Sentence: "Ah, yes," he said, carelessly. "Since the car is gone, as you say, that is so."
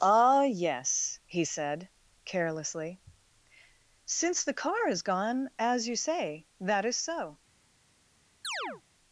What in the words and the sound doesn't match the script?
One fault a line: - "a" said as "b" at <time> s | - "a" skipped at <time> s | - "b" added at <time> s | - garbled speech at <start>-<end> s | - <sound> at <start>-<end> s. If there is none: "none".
- chirp at 8.4-8.8 s